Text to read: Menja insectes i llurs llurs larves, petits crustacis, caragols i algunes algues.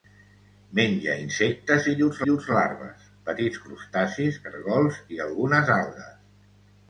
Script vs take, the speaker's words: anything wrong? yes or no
no